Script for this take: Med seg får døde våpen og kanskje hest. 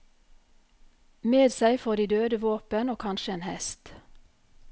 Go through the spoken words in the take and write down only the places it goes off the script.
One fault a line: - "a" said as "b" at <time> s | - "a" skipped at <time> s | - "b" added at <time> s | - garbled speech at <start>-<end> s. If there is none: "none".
- "de" added at 1.9 s
- "en" added at 3.3 s